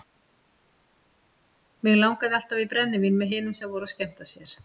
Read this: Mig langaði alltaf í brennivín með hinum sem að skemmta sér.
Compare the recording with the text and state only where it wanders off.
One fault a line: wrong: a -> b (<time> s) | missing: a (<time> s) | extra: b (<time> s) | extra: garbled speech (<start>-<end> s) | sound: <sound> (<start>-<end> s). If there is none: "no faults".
extra: voru (3.7 s)